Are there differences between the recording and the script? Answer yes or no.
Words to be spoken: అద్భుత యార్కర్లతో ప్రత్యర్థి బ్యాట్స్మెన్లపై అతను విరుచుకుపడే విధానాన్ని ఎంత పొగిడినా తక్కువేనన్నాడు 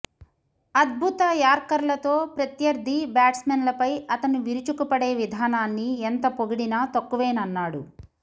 no